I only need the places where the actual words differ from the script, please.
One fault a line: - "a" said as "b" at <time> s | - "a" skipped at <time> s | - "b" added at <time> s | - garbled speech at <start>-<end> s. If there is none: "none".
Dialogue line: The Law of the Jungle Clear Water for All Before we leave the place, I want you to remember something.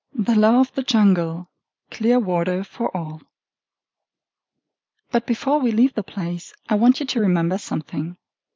- "But" added at 5.1 s